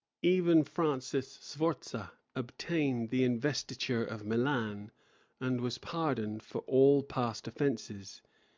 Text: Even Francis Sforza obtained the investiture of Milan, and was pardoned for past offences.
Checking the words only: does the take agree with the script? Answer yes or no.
no